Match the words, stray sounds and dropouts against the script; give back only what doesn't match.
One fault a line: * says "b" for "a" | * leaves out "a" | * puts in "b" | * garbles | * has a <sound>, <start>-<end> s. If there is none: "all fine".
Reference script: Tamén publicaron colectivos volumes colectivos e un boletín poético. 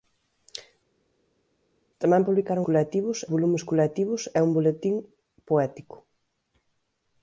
all fine